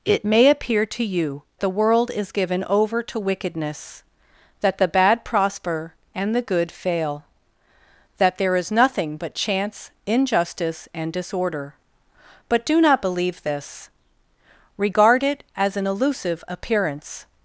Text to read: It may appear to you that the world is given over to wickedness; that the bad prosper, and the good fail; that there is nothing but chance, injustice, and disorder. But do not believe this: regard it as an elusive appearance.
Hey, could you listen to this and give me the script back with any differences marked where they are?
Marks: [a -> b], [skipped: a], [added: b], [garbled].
It may appear to you [skipped: that] the world is given over to wickedness; that the bad prosper, and the good fail; that there is nothing but chance, injustice, and disorder. But do not believe this: regard it as an elusive appearance.